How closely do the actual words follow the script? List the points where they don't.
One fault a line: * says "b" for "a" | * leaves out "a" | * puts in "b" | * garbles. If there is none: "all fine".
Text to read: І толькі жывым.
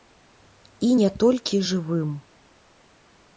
* puts in "не"